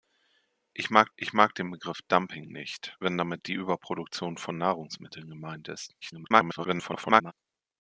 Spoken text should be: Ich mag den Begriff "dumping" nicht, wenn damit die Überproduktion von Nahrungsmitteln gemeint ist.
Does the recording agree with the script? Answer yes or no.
no